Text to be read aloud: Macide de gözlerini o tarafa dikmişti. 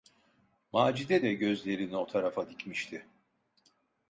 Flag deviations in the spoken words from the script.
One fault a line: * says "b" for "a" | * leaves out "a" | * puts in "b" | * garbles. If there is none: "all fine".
all fine